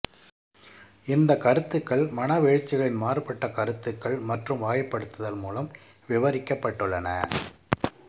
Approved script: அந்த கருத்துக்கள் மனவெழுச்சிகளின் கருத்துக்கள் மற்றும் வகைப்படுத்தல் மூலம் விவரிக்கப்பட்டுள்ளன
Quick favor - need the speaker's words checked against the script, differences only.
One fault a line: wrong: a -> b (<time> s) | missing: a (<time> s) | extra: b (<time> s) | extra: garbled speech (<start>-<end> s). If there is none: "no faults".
wrong: அந்த -> இந்த (1.1 s)
extra: மாறுபட்ட (3.0 s)